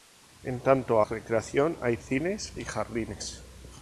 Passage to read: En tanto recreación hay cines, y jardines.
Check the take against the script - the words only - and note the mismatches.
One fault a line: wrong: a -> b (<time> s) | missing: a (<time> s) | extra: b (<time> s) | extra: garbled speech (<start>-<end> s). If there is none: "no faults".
no faults